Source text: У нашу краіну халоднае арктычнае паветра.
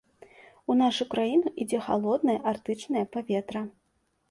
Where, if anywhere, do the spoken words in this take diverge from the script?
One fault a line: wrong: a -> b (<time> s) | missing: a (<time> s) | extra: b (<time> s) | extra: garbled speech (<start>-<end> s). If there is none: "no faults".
extra: ідзе (1.6 s)